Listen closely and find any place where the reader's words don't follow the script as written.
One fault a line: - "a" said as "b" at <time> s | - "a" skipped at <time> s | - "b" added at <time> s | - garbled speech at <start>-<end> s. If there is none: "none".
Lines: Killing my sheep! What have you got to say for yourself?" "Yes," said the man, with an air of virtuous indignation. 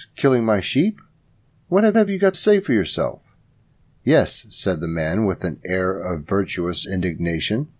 - "have" added at 2.0 s
- "to" skipped at 2.4 s